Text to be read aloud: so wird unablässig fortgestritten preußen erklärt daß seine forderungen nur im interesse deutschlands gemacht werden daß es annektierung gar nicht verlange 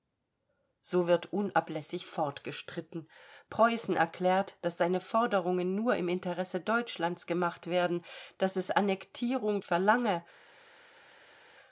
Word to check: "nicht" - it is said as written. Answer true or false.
false